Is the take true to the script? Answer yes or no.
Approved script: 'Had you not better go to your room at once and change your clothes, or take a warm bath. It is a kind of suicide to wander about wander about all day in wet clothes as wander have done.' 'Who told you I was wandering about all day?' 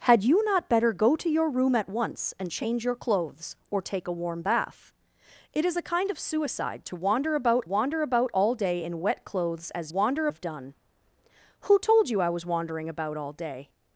yes